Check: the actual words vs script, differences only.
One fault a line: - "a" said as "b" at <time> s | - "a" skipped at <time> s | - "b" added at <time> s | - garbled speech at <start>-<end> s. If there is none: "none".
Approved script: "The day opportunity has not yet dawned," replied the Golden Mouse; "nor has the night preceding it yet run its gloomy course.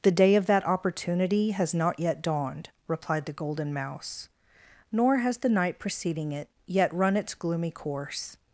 - "of that" added at 0.3 s